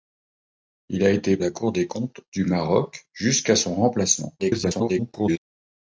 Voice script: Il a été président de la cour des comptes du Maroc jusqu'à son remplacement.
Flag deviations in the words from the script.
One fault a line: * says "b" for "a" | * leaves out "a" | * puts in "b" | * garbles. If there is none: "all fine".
* leaves out "président de"
* garbles